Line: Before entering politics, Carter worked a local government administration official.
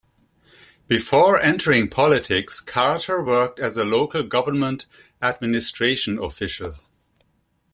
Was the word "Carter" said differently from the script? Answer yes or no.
no